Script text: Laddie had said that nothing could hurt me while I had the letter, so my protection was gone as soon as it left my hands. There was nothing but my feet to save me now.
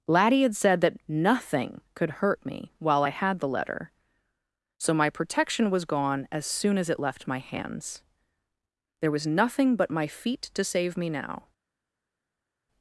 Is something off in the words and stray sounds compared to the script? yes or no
no